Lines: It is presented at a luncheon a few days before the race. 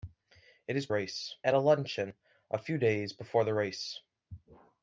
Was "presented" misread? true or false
true